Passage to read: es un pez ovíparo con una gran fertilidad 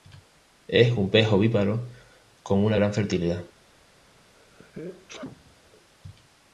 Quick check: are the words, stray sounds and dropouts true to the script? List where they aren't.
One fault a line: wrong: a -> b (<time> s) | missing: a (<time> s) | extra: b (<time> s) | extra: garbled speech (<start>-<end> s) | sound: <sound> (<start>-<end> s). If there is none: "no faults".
sound: sneeze (4.4-5.7 s)